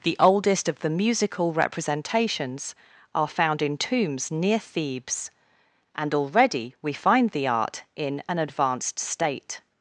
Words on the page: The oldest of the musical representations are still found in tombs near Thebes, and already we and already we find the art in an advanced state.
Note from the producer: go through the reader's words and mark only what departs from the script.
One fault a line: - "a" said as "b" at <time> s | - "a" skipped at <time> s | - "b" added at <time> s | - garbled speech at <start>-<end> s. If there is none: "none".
- "still" skipped at 3.3 s
- "and already we" skipped at 6.9 s